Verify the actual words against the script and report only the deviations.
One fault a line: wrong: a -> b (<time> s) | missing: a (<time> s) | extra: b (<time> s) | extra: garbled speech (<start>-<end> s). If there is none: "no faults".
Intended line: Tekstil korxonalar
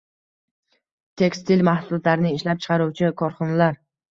extra: mahsulotlarini ishlab chiqaruvchi (1.7 s)